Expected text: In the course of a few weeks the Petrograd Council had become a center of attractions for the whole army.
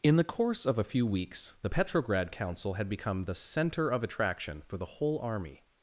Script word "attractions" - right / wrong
wrong